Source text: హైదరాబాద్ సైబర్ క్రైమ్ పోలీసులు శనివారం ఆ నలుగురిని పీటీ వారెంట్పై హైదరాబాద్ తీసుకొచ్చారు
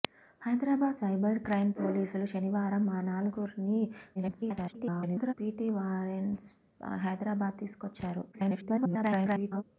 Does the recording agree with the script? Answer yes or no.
no